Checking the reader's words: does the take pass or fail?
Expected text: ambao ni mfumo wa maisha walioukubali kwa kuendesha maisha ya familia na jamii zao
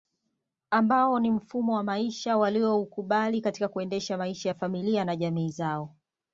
fail